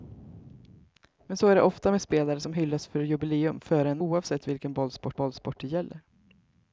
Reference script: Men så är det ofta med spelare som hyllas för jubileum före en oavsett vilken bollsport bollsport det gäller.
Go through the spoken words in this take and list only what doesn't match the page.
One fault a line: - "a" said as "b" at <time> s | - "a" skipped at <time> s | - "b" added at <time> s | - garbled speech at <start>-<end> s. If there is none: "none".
none